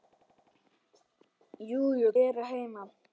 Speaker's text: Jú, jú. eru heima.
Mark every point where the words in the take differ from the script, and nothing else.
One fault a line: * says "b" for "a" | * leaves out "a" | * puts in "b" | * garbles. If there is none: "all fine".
all fine